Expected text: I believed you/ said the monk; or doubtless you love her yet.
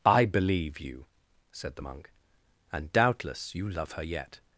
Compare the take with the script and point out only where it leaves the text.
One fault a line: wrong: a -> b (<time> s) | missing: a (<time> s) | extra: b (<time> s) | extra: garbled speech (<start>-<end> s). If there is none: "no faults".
wrong: believed -> believe (0.2 s)
wrong: or -> and (2.7 s)